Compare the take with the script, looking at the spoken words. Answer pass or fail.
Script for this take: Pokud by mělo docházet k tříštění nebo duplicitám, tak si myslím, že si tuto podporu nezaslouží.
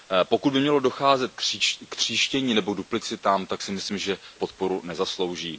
fail